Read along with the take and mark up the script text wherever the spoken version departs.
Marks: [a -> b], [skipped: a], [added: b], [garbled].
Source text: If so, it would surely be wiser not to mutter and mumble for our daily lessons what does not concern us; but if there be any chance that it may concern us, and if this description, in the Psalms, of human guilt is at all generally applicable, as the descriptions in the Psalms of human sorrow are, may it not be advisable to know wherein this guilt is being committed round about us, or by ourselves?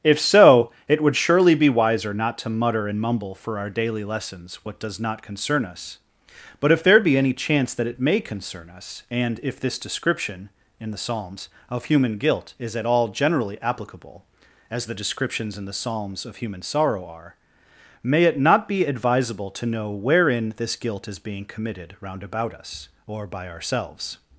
If so, it would surely be wiser not to mutter and mumble for our daily lessons what does not concern us; but if there be any chance that it may concern us, and if this description, in the Psalms, of human guilt is at all generally applicable, as the descriptions in the Psalms of human sorrow are, may it not be advisable to know wherein this guilt is being committed round about us, or by ourselves?